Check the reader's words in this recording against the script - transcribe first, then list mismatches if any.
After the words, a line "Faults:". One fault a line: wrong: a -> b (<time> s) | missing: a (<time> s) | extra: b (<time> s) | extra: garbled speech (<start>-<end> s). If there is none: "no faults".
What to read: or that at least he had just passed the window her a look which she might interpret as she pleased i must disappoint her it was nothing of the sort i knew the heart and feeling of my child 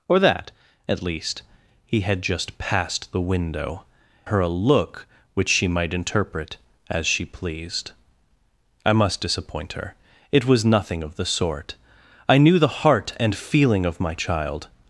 or that at least he had just passed the window her a look which she might interpret as she pleased i must disappoint her it was nothing of the sort i knew the heart and feeling of my child
Faults:
no faults